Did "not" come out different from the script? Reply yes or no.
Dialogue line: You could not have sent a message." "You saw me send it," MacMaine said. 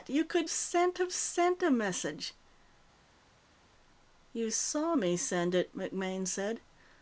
yes